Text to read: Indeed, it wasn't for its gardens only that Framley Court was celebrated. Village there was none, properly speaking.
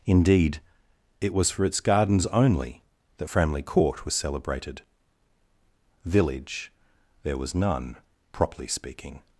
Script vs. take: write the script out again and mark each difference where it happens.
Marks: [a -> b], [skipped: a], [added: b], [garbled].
Indeed, it [wasn't -> was] for its gardens only that Framley Court was celebrated. Village there was none, properly speaking.